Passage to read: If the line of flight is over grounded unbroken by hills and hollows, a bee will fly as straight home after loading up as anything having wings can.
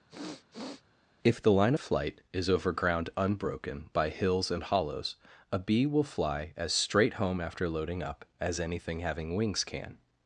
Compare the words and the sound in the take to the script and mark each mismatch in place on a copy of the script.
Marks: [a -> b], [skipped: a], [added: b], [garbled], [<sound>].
[sniff] If the line of flight is over [grounded -> ground] unbroken by hills and hollows, a bee will fly as straight home after loading up as anything having wings can.